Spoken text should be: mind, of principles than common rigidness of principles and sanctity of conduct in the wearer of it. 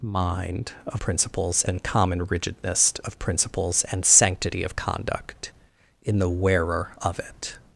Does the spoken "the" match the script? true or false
true